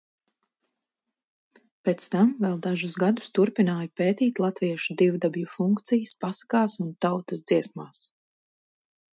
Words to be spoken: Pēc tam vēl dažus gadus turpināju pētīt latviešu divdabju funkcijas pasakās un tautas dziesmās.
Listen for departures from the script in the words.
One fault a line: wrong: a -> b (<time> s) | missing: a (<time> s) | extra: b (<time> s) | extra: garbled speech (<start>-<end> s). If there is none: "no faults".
no faults